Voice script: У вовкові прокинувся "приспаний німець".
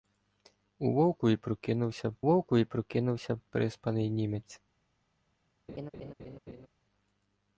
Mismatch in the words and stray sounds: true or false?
true